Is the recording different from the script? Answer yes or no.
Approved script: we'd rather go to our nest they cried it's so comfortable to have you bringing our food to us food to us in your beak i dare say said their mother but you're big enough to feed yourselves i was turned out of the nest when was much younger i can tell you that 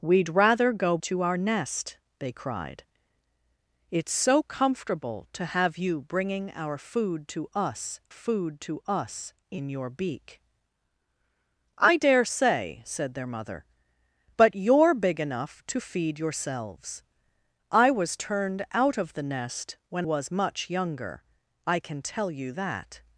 no